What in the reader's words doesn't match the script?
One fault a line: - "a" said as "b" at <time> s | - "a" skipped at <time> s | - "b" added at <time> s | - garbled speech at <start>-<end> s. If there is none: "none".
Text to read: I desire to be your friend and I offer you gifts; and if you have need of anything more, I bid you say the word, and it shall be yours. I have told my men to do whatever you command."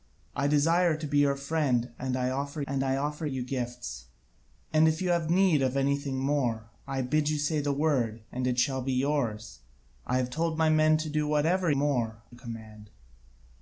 - "and I offer" added at 2.7 s
- "you" said as "more" at 11.7 s